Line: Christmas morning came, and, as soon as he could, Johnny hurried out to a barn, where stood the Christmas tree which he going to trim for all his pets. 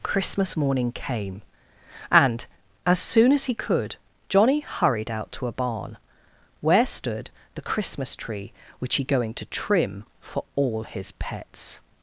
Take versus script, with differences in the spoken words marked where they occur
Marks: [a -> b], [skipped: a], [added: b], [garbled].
Christmas morning came, and, as soon as he could, Johnny hurried out to a barn, where stood the Christmas tree which he going to trim for all his pets.